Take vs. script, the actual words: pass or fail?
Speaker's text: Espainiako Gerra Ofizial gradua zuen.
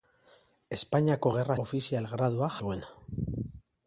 pass